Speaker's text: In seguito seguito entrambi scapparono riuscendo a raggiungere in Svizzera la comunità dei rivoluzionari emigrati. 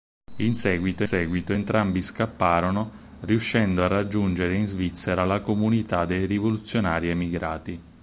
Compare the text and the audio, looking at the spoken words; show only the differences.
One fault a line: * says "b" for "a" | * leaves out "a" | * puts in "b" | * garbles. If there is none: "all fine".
all fine